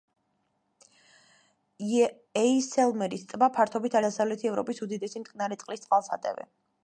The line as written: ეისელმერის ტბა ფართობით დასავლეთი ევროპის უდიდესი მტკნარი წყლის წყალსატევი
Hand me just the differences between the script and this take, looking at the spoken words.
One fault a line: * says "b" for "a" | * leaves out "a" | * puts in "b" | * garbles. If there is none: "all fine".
all fine